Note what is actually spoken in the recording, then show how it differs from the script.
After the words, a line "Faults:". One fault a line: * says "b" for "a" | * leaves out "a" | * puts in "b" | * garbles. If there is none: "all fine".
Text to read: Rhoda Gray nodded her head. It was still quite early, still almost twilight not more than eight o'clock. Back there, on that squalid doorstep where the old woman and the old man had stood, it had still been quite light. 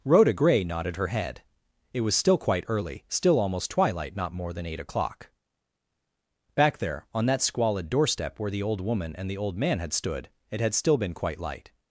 Rhoda Gray nodded her head. It was still quite early, still almost twilight not more than eight o'clock. Back there, on that squalid doorstep where the old woman and the old man had stood, it had still been quite light.
Faults:
all fine